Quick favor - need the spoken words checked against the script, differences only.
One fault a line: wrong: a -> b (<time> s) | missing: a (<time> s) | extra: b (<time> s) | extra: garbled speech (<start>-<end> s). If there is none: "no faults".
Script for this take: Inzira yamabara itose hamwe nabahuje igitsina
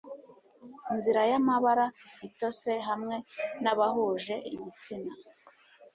no faults